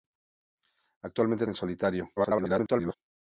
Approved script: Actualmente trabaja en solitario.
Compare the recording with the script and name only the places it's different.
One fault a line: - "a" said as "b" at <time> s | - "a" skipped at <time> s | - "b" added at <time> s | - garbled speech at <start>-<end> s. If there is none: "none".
- "trabaja" skipped at 1.4 s
- garbled speech at 2.2-2.9 s